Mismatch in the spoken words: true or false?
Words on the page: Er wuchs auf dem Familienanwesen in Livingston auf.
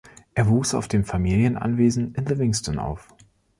false